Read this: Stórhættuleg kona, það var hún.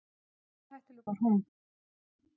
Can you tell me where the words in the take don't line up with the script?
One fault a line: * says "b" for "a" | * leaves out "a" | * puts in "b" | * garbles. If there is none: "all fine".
* leaves out "kona það"